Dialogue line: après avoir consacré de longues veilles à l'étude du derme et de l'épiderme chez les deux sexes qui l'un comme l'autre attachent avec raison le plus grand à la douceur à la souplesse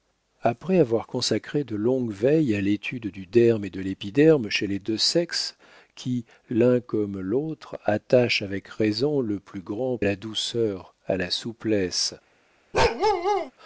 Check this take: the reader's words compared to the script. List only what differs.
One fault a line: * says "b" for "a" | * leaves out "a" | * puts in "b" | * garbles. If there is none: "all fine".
all fine